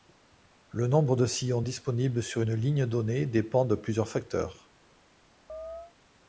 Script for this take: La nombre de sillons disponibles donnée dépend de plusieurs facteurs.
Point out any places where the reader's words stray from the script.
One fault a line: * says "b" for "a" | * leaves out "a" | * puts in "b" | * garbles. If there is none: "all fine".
* says "Le" for "La"
* puts in "sur une ligne"